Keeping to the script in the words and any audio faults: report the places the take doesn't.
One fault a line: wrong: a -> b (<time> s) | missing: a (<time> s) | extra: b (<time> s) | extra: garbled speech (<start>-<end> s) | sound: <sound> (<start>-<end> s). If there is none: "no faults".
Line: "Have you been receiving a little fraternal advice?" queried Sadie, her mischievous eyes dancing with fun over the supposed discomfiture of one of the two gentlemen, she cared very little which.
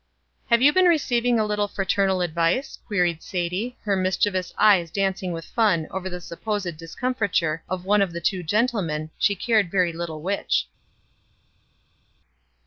no faults